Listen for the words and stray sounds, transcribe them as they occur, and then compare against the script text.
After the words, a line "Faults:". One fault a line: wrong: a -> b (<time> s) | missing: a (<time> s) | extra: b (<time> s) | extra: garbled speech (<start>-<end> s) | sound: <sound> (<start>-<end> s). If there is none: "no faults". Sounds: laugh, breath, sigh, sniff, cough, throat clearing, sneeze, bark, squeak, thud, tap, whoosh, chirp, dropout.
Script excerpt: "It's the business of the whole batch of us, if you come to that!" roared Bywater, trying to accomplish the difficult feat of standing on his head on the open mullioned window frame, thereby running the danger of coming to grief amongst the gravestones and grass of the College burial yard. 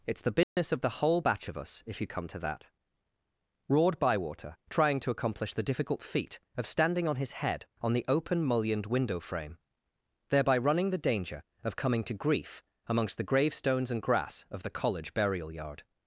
"It's the business of the whole batch of us, if you come to that!" roared Bywater, trying to accomplish the difficult feat of standing on his head on the open mullioned window frame, thereby running the danger of coming to grief amongst the gravestones and grass of the College burial yard.
Faults:
sound: dropout (0.4-0.6 s)